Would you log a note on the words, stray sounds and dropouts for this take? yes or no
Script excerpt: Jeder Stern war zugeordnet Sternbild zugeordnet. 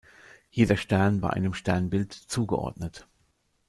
yes